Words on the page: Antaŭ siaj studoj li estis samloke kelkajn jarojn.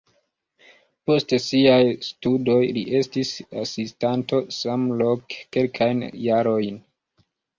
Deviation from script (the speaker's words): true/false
true